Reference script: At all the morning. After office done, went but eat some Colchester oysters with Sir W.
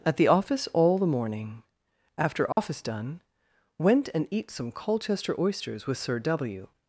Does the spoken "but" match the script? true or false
false